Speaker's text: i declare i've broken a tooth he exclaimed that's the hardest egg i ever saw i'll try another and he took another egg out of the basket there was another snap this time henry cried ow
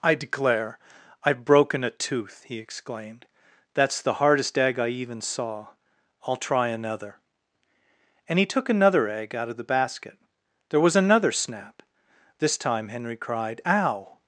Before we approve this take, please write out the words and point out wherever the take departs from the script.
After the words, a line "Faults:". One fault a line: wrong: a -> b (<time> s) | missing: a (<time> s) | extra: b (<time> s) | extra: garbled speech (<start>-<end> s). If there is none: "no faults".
i declare i've broken a tooth he exclaimed that's the hardest egg i even saw i'll try another and he took another egg out of the basket there was another snap this time henry cried ow
Faults:
wrong: ever -> even (4.9 s)